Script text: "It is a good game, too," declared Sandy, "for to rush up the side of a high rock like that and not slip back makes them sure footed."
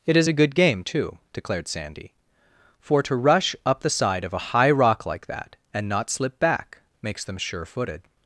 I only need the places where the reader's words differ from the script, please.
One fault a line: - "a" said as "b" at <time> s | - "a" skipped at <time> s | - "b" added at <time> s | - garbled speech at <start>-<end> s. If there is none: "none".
none